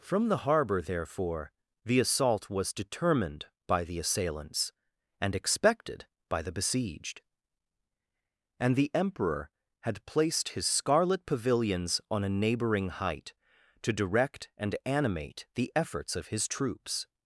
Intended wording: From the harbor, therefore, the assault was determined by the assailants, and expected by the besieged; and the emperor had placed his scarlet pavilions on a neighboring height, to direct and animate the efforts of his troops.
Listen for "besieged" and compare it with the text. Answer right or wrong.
right